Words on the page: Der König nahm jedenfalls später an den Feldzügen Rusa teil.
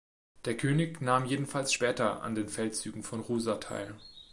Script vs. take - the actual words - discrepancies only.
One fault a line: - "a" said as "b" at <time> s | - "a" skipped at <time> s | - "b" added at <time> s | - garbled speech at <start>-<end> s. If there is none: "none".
- "von" added at 3.0 s